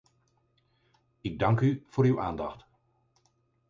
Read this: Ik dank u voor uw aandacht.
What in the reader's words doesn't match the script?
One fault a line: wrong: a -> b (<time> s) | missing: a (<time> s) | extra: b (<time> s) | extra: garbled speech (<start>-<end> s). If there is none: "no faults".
no faults